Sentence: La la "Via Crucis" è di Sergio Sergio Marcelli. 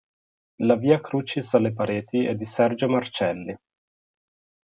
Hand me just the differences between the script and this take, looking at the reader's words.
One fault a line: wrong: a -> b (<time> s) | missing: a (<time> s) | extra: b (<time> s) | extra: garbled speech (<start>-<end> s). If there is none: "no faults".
missing: la (0.8 s)
extra: alle pareti (1.5 s)
missing: Sergio (2.9 s)